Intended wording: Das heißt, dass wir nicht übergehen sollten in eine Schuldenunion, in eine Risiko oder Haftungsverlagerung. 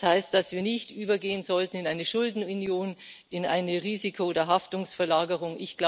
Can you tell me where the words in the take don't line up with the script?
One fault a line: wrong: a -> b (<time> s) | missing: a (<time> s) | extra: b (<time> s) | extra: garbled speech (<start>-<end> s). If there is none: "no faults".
no faults